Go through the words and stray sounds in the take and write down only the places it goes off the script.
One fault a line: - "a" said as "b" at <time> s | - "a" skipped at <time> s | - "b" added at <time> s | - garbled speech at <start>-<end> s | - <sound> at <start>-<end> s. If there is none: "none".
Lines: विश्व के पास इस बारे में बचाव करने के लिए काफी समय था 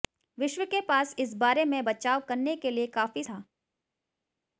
- "समय" skipped at 3.2 s